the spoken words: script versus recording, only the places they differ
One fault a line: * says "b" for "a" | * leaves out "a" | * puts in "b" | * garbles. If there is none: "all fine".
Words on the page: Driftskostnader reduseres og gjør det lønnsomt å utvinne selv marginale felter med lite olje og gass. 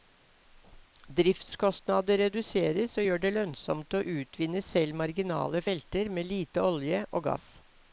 all fine